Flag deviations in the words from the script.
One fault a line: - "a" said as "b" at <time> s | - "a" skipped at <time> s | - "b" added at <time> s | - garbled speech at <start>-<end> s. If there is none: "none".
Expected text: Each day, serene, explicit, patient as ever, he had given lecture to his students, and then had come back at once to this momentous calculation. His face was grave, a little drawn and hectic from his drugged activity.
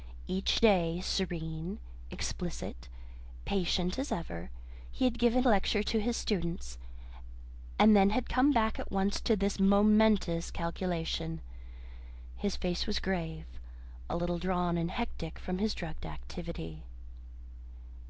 none